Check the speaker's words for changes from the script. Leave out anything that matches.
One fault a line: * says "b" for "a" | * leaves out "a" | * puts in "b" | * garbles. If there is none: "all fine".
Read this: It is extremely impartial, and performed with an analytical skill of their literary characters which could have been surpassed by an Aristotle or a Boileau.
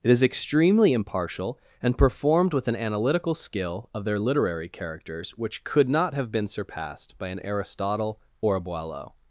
* puts in "not"